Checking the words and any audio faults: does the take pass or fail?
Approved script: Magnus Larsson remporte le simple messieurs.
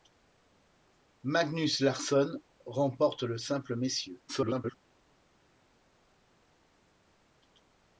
fail